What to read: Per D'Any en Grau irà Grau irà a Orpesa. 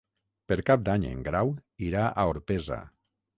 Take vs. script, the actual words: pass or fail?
fail